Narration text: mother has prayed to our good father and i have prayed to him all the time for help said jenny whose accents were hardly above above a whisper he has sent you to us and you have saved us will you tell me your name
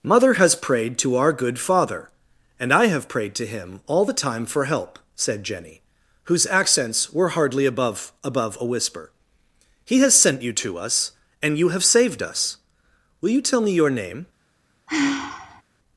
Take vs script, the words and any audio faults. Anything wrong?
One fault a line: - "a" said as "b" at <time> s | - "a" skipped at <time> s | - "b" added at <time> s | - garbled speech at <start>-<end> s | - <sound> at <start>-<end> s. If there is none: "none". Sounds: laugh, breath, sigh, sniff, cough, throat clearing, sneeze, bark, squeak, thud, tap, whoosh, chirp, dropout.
- sigh at 14.9-15.6 s